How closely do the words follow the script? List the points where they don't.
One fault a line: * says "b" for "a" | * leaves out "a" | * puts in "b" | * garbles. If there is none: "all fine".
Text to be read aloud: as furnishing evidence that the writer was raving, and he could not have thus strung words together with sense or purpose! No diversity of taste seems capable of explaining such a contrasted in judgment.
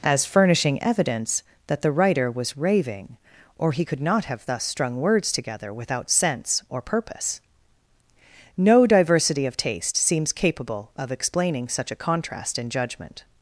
* says "or" for "and"
* says "without" for "with"
* says "contrast" for "contrasted"